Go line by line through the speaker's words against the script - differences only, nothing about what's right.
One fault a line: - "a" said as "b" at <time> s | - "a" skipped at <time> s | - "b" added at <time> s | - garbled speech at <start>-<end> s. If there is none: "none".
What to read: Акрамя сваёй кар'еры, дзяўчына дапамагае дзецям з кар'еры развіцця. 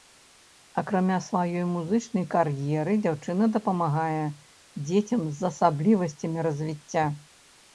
- "музычнай" added at 1.7 s
- "кар'еры" said as "асаблівасцямі" at 5.5 s